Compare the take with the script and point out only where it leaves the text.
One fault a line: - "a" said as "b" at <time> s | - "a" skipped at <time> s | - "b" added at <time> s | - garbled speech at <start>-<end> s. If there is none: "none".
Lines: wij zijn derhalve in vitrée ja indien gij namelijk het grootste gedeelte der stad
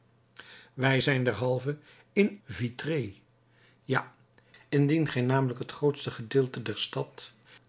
none